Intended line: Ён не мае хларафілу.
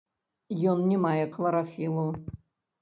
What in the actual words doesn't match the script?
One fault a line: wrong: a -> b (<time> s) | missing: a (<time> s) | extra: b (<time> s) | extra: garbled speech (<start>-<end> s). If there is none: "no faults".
no faults